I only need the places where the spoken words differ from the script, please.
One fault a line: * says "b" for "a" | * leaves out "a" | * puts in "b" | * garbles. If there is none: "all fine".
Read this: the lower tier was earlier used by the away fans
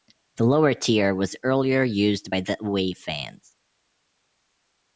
all fine